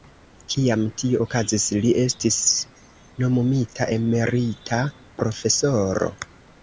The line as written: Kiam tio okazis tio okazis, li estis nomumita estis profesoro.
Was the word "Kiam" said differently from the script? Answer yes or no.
no